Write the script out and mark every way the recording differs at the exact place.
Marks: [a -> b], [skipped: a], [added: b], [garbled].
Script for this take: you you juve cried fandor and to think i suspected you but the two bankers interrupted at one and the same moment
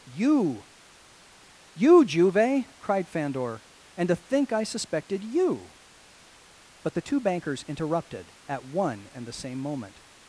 you you juve cried fandor and to think i suspected you but the two bankers interrupted at one and the same moment